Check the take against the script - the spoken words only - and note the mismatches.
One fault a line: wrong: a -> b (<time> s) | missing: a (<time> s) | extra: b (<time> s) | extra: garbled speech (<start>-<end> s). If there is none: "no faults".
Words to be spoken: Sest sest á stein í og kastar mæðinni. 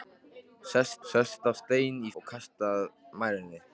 no faults